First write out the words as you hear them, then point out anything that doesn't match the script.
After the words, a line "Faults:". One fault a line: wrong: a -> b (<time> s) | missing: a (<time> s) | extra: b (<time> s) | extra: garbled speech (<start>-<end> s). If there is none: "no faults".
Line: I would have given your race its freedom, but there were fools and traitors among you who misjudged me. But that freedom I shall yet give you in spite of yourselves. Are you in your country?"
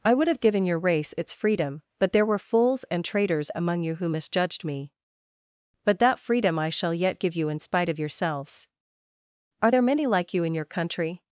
I would have given your race its freedom, but there were fools and traitors among you who misjudged me. But that freedom I shall yet give you in spite of yourselves. Are there many like you in your country?"
Faults:
extra: there many like (9.7 s)